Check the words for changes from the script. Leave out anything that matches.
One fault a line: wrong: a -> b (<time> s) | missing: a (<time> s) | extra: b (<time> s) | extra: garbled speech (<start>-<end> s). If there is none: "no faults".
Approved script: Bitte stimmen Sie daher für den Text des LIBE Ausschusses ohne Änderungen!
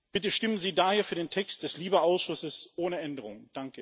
no faults